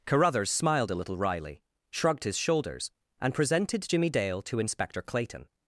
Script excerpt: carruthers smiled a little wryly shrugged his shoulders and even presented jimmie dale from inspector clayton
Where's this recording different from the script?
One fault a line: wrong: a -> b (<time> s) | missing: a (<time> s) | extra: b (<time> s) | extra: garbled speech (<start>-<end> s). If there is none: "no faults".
missing: even (3.3 s)
wrong: from -> to (4.4 s)